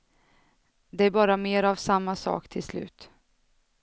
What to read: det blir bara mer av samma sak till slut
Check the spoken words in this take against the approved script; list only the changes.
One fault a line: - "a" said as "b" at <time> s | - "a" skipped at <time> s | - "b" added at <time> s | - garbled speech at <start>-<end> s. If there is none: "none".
- "blir" skipped at 1.1 s